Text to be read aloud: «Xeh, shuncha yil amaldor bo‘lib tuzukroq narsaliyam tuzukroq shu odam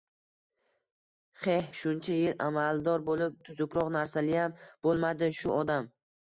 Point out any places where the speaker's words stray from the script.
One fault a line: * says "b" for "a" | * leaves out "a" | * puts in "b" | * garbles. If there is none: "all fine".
* says "bo‘lmadi" for "tuzukroq"